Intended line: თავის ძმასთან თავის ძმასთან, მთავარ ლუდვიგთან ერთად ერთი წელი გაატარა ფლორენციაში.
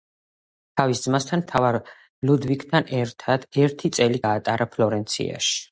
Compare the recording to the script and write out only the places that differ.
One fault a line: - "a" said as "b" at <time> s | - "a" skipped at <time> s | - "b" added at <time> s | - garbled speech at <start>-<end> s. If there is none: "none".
- "თავის ძმასთან" skipped at 1.4 s